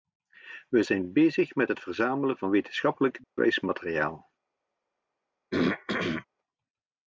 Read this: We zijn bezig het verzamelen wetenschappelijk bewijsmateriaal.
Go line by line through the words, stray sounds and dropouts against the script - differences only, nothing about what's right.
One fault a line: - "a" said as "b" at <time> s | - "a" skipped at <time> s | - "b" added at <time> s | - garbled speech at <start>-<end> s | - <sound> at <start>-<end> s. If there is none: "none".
- "met" added at 1.5 s
- "van" added at 2.4 s
- dropout at 3.2-3.4 s
- throat clearing at 5.5-6.3 s